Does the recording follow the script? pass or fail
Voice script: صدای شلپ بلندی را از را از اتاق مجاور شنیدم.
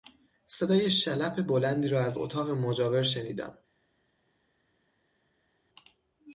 fail